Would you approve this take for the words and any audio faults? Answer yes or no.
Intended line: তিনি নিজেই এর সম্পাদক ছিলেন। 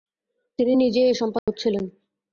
no